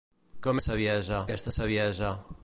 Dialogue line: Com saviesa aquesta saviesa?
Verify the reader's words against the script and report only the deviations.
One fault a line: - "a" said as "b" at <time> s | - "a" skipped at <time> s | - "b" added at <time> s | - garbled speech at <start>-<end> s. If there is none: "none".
none